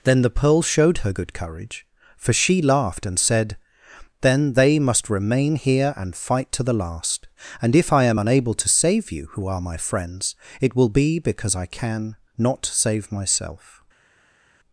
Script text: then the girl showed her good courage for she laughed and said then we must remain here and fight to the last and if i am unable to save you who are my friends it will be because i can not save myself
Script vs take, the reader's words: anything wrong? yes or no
yes